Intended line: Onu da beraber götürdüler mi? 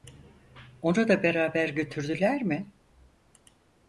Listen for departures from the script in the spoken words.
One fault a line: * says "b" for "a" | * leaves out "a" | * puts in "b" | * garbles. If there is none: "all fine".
all fine